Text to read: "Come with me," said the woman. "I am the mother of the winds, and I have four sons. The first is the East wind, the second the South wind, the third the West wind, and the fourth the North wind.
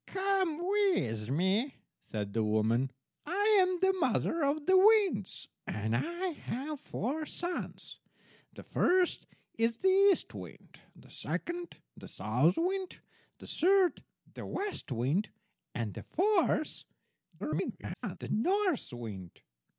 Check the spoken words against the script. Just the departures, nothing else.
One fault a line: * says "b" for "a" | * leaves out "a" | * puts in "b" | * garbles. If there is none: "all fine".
* garbles